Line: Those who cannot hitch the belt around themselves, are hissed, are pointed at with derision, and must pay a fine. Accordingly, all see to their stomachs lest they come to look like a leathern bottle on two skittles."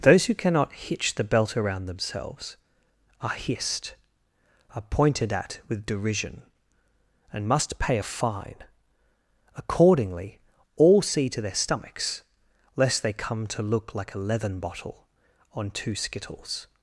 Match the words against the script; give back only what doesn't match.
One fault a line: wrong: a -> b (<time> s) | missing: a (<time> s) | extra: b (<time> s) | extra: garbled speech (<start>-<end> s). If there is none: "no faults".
no faults